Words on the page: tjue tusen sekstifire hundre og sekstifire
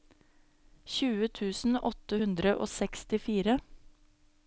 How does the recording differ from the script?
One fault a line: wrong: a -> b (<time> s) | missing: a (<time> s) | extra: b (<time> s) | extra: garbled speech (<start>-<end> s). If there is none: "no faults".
wrong: sekstifire -> åtte (1.9 s)